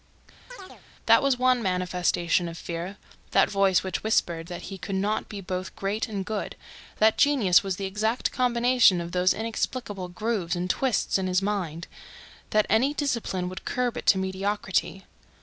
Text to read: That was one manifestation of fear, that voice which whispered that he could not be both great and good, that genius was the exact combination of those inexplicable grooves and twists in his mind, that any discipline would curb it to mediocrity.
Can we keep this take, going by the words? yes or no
yes